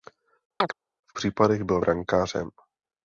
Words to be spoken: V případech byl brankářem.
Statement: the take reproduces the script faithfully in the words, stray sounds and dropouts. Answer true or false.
false